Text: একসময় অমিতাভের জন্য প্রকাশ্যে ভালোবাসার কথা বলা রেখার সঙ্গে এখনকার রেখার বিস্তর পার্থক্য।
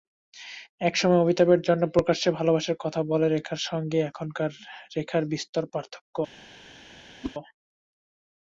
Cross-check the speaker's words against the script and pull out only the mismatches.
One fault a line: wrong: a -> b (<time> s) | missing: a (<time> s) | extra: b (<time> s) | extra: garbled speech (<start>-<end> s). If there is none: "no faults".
no faults